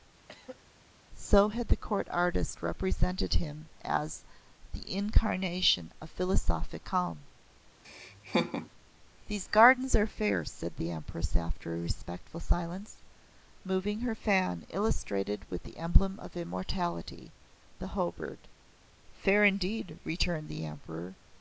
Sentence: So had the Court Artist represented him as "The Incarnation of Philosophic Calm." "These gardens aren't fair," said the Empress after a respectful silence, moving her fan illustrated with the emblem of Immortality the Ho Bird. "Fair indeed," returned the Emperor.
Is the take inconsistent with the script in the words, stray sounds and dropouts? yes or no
yes